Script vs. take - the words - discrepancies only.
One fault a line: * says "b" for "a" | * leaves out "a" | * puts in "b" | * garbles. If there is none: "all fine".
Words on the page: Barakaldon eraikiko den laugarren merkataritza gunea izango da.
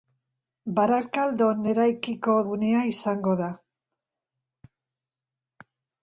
* leaves out "den laugarren merkataritza"